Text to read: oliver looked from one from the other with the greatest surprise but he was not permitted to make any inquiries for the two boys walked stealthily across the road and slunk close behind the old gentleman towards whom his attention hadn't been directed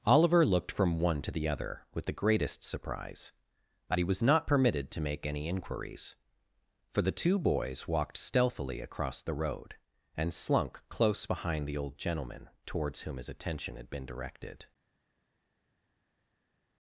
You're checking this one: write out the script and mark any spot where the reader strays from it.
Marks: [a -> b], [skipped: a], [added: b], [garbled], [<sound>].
oliver looked from one [from -> to] the other with the greatest surprise but he was not permitted to make any inquiries for the two boys walked stealthily across the road and slunk close behind the old gentleman towards whom his attention [hadn't -> had] been directed